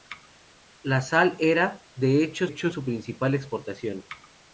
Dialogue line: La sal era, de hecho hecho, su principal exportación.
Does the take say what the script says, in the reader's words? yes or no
yes